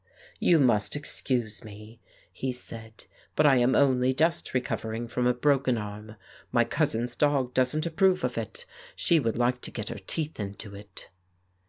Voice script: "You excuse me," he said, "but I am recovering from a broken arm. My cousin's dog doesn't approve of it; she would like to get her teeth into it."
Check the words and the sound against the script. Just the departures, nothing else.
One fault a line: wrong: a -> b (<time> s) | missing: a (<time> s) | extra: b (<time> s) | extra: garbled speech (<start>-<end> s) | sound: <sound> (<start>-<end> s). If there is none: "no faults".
extra: must (0.6 s)
extra: only just (3.8 s)